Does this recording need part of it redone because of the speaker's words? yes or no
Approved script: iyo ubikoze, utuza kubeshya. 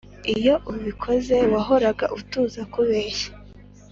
yes